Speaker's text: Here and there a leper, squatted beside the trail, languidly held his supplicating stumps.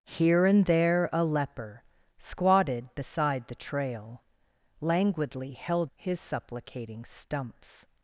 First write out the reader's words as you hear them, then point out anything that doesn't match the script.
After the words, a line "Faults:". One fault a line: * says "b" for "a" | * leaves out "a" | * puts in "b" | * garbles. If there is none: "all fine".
Here and there a leper, squatted beside the trail, languidly held his supplicating stumps.
Faults:
all fine